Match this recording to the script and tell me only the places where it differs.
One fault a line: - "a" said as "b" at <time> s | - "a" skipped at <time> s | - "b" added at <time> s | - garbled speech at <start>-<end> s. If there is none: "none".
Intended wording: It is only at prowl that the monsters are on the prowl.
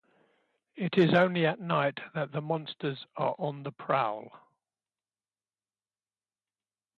- "prowl" said as "night" at 1.6 s